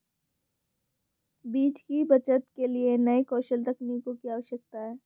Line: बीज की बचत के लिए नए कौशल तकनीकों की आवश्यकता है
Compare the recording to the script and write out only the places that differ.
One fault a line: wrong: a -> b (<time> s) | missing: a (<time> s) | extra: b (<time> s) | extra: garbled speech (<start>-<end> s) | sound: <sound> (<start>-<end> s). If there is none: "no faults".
no faults